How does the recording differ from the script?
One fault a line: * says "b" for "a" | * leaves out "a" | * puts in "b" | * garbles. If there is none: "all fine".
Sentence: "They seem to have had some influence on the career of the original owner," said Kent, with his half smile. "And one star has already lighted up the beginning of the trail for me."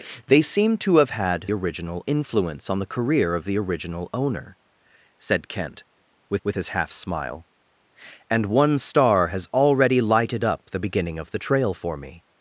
* says "original" for "some"
* puts in "with"